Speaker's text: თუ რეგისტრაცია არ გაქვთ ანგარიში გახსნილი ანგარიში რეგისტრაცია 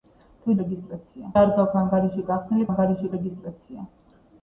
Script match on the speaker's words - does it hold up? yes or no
yes